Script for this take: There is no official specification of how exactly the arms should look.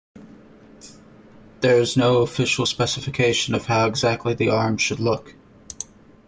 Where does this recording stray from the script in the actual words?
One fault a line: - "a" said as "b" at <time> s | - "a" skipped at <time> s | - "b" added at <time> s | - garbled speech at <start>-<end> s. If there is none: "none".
none